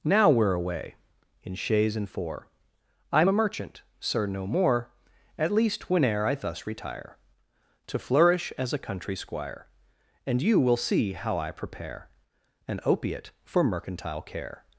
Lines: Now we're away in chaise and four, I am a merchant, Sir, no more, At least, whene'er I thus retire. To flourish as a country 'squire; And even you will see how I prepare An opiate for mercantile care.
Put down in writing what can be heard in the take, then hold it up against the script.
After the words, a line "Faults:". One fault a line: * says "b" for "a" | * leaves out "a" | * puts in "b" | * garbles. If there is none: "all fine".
Now we're away in chaise and four, I am a merchant, Sir, no more, At least, whene'er I thus retire. To flourish as a country 'squire; And you will see how I prepare An opiate for mercantile care.
Faults:
* leaves out "even"